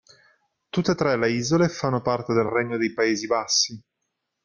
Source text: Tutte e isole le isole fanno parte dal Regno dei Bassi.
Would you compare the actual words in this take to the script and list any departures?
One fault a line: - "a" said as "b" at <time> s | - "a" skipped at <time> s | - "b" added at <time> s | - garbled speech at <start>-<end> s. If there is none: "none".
- "isole" said as "tre" at 0.9 s
- "dal" said as "del" at 2.3 s
- "Paesi" added at 2.9 s